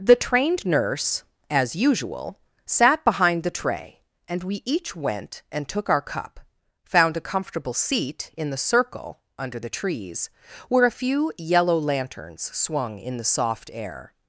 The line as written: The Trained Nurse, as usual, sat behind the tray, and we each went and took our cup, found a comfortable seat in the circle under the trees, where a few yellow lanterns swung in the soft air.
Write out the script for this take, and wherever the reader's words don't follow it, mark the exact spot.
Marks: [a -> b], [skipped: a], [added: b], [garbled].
The Trained Nurse, as usual, sat behind the tray, and we each went and took our cup, found a comfortable seat in the circle under the trees, where a few yellow lanterns swung in the soft air.